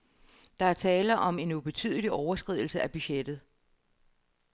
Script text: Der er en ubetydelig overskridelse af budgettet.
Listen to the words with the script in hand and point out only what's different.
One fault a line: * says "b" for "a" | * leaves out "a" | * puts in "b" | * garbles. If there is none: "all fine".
* puts in "tale om"